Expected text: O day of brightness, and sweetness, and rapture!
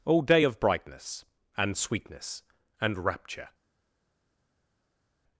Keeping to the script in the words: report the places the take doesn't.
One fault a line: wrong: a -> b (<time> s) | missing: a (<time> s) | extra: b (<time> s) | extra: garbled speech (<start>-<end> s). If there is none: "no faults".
no faults